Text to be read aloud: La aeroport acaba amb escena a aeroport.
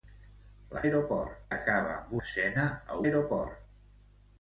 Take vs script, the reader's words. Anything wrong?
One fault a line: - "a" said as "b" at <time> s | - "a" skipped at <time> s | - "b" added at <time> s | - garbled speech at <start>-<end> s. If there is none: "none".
none